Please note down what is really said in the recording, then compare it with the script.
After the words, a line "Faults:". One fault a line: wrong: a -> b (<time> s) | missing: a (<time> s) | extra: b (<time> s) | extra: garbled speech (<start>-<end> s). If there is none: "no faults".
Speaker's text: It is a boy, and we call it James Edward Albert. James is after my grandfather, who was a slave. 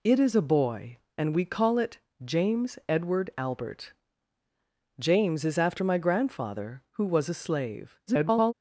It is a boy, and we call it James Edward Albert. James is after my grandfather, who was a slave. [garbled]
Faults:
extra: garbled speech (8.1-8.5 s)